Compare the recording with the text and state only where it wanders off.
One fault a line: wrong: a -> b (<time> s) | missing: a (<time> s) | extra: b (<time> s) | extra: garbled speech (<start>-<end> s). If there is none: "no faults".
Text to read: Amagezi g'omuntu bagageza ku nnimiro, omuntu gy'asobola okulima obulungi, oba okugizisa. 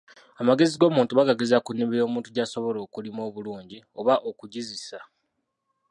no faults